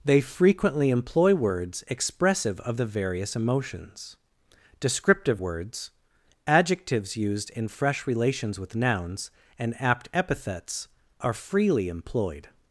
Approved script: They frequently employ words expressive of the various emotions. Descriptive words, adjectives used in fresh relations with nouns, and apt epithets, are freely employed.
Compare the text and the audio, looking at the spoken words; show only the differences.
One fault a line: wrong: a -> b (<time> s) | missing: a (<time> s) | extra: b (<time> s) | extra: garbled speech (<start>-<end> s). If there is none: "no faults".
no faults